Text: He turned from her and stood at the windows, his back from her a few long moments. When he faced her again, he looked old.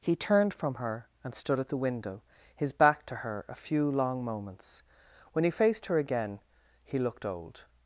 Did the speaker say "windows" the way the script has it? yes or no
no